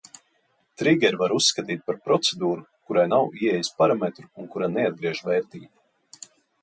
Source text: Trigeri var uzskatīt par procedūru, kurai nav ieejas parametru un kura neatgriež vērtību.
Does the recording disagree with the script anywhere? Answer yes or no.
no